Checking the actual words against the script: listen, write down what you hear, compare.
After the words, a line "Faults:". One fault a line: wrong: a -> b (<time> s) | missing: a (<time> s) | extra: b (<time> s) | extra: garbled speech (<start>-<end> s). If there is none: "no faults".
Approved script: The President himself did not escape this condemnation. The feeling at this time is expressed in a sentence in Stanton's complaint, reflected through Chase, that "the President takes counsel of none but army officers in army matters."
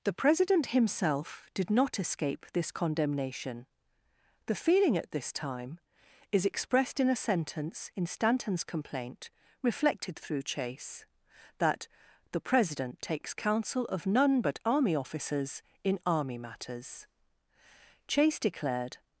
The President himself did not escape this condemnation. The feeling at this time is expressed in a sentence in Stanton's complaint, reflected through Chase, that "the President takes counsel of none but army officers in army matters." Chase declared
Faults:
extra: Chase declared (18.1 s)